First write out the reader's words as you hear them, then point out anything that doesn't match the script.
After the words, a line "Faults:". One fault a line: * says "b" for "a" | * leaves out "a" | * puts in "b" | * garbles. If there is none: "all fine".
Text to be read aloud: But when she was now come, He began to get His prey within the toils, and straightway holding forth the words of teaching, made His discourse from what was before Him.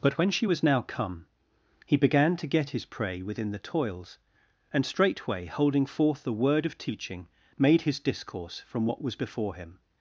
But when she was now come, He began to get His prey within the toils, and straightway holding forth the word of teaching, made His discourse from what was before Him.
Faults:
* says "word" for "words"